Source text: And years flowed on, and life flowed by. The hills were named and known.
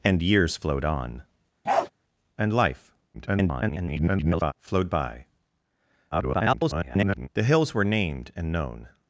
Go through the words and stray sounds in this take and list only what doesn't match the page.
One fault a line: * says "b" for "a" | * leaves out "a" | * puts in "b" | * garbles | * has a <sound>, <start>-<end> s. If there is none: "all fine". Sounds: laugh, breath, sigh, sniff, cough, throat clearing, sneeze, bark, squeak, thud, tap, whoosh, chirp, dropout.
* has a bark, 1.6-1.9 s
* garbles
* garbles